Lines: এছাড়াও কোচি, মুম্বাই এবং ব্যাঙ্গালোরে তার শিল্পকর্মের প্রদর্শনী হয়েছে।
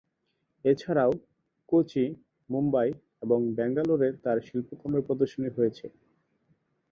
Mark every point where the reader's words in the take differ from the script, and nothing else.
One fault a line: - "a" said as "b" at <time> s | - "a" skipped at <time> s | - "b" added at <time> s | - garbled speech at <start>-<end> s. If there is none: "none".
none